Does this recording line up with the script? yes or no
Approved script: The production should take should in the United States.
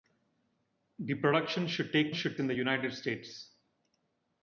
yes